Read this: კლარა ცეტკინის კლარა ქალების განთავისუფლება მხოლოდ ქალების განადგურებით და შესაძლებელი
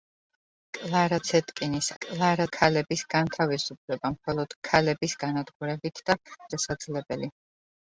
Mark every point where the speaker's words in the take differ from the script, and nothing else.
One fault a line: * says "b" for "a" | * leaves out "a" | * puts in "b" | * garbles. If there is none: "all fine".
all fine